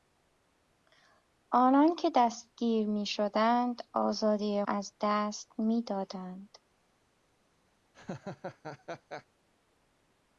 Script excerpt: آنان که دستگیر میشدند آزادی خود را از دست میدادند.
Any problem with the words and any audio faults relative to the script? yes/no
yes